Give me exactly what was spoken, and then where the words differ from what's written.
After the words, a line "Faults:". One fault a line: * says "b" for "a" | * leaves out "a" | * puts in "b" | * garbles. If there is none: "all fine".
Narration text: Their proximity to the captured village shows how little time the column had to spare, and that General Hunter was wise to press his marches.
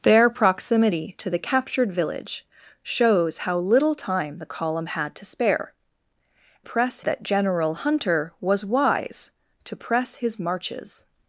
Their proximity to the captured village shows how little time the column had to spare, press that General Hunter was wise to press his marches.
Faults:
* says "press" for "and"